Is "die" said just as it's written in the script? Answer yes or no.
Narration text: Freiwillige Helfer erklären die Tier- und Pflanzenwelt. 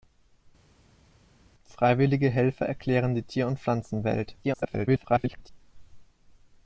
yes